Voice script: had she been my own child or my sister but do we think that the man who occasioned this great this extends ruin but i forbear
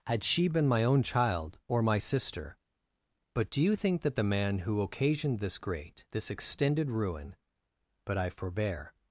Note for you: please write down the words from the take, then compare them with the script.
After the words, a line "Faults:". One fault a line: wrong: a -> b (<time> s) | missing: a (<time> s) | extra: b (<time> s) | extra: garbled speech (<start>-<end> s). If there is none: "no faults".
had she been my own child or my sister but do you think that the man who occasioned this great this extended ruin but i forbear
Faults:
wrong: we -> you (3.6 s)
wrong: extends -> extended (6.3 s)